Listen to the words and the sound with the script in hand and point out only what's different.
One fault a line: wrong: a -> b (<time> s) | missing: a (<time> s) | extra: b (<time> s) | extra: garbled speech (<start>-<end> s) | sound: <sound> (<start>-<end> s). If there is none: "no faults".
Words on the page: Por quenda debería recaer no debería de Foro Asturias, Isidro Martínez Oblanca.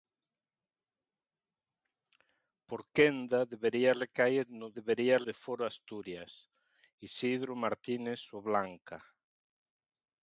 no faults